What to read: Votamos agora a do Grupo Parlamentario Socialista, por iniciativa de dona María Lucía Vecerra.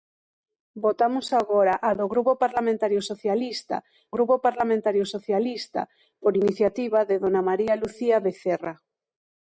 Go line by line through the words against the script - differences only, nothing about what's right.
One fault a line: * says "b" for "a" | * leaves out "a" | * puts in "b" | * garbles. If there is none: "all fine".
* puts in "Grupo Parlamentario Socialista"